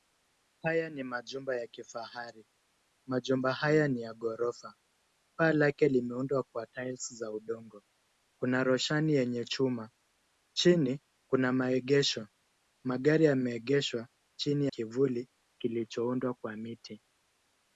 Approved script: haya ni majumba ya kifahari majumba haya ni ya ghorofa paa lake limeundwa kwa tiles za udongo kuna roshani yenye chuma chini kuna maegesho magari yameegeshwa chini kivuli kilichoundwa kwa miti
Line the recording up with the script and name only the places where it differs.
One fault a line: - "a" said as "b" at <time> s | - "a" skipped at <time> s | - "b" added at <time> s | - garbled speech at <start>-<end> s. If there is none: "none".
none